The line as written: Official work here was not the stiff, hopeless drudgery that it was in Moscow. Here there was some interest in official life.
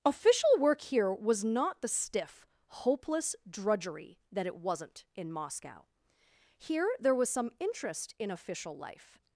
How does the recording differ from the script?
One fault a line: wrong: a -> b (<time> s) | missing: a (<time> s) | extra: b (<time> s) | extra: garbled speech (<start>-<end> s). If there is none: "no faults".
wrong: was -> wasn't (4.5 s)